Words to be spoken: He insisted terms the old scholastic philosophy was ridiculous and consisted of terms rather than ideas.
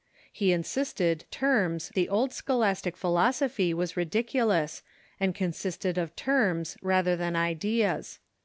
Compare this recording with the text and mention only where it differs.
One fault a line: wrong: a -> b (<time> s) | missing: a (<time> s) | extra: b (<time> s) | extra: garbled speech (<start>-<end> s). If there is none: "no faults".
no faults